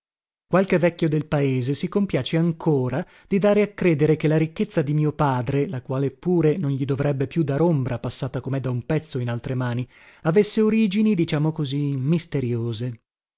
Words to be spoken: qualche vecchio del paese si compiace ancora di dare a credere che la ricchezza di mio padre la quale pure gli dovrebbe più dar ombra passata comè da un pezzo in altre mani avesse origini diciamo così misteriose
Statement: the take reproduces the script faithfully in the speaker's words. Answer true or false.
false